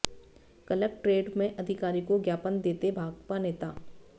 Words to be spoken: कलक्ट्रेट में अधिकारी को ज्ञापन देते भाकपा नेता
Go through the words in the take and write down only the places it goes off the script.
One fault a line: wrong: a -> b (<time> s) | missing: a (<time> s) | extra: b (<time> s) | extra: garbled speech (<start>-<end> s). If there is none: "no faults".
no faults